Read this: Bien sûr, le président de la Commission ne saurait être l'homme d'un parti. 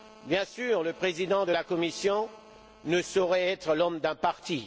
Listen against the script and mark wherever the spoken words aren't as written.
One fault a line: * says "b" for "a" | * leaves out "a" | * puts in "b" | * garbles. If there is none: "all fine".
all fine